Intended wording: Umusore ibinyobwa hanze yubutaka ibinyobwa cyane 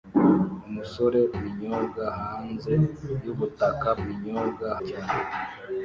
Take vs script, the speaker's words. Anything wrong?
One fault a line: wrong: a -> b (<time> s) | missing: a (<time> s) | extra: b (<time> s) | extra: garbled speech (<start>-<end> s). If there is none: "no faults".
no faults